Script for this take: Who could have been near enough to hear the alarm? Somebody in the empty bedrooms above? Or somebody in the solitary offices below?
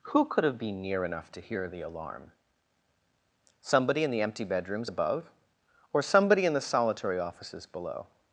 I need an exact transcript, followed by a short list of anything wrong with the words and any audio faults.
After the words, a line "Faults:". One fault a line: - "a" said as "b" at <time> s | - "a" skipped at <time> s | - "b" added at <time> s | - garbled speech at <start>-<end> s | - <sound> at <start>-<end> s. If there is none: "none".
Who could have been near enough to hear the alarm? Somebody in the empty bedrooms above? Or somebody in the solitary offices below?
Faults:
none